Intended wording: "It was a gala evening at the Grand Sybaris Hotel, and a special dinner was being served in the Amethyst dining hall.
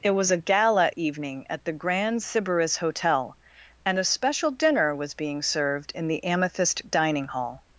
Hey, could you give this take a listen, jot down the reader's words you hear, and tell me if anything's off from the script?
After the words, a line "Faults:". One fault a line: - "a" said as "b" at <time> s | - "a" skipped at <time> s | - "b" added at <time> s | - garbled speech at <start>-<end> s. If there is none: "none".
"It was a gala evening at the Grand Sybaris Hotel, and a special dinner was being served in the Amethyst dining hall.
Faults:
none